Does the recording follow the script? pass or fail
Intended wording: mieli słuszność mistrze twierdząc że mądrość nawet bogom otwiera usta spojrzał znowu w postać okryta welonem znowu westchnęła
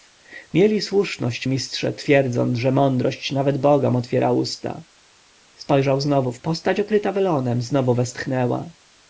pass